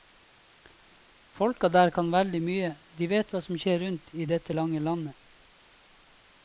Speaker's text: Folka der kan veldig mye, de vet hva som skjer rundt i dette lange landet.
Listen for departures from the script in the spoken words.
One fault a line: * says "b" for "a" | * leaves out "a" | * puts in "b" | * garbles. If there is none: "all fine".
all fine